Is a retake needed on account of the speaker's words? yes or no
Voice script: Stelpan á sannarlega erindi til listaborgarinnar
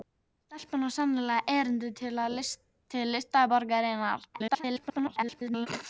yes